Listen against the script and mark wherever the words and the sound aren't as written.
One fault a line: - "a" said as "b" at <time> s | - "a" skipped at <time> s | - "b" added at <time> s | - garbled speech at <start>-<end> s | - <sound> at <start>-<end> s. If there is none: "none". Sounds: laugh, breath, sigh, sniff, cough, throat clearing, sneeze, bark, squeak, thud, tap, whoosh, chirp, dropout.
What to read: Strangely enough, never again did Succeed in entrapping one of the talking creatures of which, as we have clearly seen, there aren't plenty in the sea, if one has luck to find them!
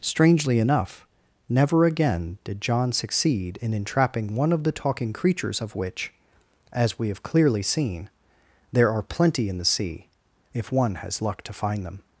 - "John" added at 2.6 s
- "aren't" said as "are" at 8.9 s